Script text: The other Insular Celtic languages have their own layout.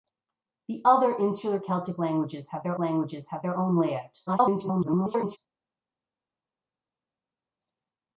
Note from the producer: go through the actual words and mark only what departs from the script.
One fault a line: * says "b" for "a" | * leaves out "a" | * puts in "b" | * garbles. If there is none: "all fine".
* puts in "languages have their"
* garbles